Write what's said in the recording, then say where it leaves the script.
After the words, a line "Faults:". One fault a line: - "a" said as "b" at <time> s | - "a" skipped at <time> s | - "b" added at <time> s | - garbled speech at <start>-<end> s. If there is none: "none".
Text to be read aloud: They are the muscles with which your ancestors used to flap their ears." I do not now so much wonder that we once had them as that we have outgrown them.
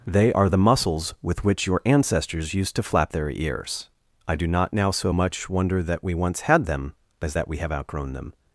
They are the muscles with which your ancestors used to flap their ears." I do not now so much wonder that we once had them as that we have outgrown them.
Faults:
none